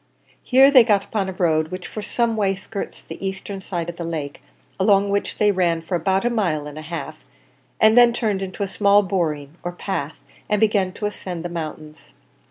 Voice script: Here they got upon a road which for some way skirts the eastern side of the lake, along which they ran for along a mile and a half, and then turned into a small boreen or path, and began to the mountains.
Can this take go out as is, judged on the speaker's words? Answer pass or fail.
fail